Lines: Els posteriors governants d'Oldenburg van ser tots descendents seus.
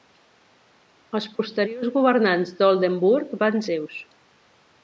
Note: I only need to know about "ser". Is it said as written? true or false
false